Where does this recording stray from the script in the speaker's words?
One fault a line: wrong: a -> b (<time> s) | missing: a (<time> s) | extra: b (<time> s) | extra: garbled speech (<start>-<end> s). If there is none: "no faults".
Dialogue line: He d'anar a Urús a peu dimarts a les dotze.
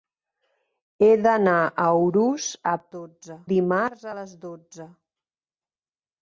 wrong: peu -> dotze (3.0 s)